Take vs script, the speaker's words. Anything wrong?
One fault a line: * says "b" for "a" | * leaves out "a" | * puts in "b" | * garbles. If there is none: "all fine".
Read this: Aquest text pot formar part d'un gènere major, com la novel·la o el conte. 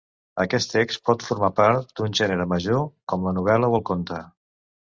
all fine